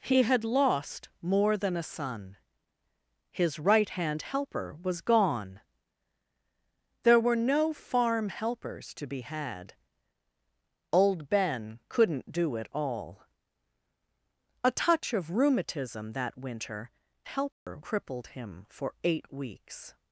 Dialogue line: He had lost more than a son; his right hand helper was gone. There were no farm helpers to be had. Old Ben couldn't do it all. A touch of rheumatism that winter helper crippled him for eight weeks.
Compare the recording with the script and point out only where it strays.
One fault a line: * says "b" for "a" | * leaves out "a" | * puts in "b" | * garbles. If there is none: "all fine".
all fine